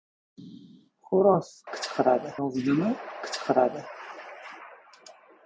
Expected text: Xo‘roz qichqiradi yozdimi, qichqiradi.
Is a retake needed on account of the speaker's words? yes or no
no